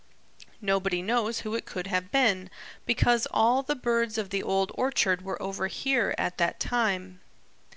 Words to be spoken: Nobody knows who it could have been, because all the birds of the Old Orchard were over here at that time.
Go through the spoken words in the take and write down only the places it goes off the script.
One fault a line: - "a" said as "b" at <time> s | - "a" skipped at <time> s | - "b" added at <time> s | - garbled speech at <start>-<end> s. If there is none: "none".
none